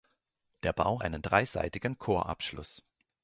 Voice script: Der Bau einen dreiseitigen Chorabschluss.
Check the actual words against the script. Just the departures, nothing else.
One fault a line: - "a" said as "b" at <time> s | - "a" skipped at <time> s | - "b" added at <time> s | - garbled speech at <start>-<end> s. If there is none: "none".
none